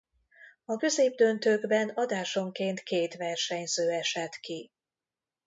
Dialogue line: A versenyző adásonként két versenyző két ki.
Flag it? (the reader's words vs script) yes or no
yes